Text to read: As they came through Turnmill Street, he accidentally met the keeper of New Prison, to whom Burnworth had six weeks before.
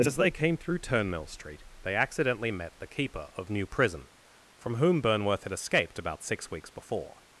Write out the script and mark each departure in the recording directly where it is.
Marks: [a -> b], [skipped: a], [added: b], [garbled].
As they came through Turnmill Street, [he -> they] accidentally met the keeper of New Prison, [to -> from] whom Burnworth had [added: escaped about] six weeks before.